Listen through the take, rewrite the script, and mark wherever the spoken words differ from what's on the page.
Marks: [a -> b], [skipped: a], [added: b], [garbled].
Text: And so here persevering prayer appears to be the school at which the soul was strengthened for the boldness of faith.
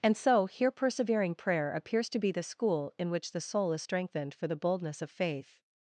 And so here persevering prayer appears to be the school [at -> in] which the soul [was -> is] strengthened for the boldness of faith.